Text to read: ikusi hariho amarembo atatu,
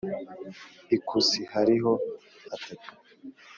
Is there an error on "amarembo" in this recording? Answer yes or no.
yes